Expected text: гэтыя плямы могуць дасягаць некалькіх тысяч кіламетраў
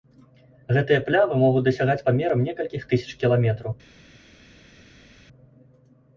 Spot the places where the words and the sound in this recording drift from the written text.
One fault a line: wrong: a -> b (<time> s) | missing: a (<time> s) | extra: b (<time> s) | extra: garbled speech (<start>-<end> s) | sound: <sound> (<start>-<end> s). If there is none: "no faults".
extra: памерам (2.1 s)